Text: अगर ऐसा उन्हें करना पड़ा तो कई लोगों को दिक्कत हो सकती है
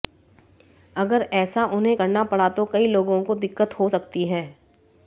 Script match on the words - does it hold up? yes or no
yes